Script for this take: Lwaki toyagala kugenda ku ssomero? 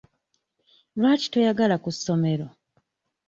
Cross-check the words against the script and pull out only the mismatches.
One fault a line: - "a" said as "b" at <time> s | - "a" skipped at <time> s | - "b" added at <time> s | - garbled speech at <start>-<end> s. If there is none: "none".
- "kugenda" skipped at 1.8 s